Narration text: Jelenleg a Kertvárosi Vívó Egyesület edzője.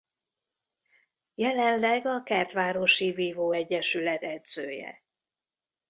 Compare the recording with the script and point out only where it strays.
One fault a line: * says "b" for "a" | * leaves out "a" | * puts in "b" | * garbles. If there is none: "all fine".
all fine